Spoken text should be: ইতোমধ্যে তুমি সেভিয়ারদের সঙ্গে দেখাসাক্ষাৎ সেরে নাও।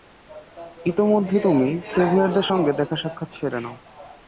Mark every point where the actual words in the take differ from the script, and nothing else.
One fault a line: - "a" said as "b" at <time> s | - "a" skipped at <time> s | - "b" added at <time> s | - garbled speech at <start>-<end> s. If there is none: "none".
none